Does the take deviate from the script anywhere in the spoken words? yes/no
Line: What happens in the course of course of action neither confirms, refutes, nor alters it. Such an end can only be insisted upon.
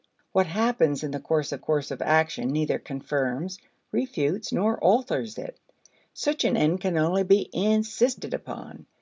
no